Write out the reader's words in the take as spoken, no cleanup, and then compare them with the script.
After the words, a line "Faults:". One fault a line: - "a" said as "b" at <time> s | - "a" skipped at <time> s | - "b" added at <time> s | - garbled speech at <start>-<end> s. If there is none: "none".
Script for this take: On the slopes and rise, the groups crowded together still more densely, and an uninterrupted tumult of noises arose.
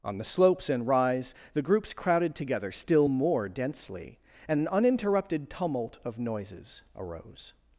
On the slopes and rise, the groups crowded together still more densely, and an uninterrupted tumult of noises arose.
Faults:
none